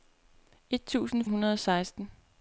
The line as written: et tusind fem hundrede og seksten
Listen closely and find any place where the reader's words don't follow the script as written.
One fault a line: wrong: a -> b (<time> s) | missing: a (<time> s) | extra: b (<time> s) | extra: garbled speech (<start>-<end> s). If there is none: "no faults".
missing: fem (1.2 s)